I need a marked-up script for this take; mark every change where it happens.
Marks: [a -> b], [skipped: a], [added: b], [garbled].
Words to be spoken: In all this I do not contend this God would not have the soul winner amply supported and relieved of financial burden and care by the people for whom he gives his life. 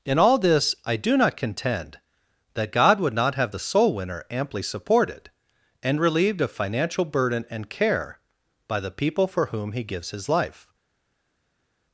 In all this I do not contend [this -> that] God would not have the soul winner amply supported and relieved of financial burden and care by the people for whom he gives his life.